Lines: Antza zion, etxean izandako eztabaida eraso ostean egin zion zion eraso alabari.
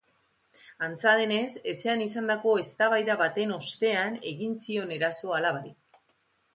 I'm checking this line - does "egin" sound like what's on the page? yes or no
yes